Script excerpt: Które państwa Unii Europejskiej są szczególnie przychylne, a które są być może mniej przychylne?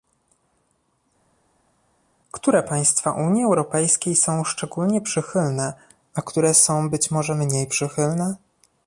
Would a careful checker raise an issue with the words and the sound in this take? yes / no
no